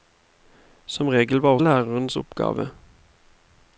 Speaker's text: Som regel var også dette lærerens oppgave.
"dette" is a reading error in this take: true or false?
true